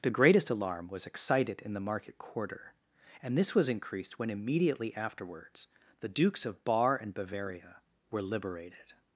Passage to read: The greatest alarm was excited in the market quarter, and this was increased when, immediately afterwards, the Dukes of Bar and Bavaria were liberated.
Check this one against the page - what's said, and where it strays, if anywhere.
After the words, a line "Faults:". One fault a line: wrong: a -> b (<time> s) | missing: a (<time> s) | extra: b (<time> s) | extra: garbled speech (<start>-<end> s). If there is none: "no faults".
The greatest alarm was excited in the market quarter, and this was increased when, immediately afterwards, the Dukes of Bar and Bavaria were liberated.
Faults:
no faults